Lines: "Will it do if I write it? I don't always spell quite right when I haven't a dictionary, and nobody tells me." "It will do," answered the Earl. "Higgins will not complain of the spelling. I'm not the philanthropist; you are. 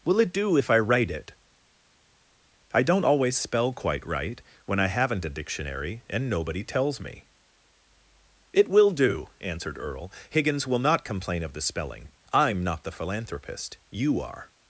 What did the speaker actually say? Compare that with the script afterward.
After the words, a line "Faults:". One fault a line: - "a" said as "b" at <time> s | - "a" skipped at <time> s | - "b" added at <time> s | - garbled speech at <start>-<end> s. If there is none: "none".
"Will it do if I write it? I don't always spell quite right when I haven't a dictionary, and nobody tells me." "It will do," answered Earl. "Higgins will not complain of the spelling. I'm not the philanthropist; you are.
Faults:
- "the" skipped at 9.8 s